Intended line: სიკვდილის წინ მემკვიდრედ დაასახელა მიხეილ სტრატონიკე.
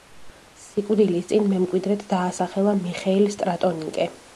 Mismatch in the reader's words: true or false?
false